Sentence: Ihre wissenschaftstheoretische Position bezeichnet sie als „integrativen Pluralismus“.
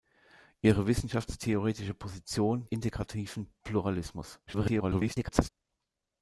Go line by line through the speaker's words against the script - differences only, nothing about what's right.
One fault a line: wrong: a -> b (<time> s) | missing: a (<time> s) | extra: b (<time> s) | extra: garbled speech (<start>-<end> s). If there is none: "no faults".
missing: bezeichnet sie als (2.7 s)
extra: garbled speech (4.5-5.5 s)